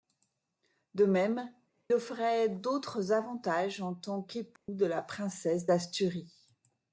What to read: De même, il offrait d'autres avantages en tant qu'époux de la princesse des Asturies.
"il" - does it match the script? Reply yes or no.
no